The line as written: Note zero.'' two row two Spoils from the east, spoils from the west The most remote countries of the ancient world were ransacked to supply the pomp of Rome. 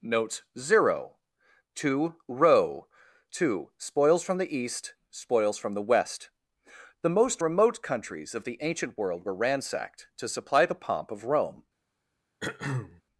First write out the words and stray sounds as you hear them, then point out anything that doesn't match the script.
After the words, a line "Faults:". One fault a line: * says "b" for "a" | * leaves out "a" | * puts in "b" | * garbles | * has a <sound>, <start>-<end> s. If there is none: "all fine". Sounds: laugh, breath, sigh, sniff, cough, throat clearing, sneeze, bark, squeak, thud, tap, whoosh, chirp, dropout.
Note zero.'' two row two Spoils from the east, spoils from the west The most remote countries of the ancient world were ransacked to supply the pomp of Rome.
Faults:
* has a throat clearing, 12.4-13.0 s